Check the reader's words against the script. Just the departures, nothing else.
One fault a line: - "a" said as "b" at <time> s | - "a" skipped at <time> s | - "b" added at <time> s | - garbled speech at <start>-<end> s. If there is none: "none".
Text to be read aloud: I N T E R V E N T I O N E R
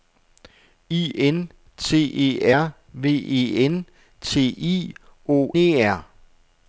- "N" skipped at 5.5 s